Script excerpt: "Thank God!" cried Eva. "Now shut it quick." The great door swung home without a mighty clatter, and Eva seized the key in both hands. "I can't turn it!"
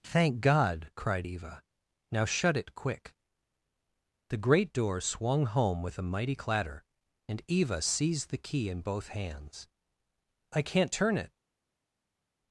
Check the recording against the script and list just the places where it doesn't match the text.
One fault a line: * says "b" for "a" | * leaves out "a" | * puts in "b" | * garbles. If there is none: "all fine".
* says "with" for "without"